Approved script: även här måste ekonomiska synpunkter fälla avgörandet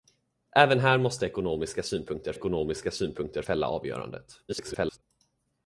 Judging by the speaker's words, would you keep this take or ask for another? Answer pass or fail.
fail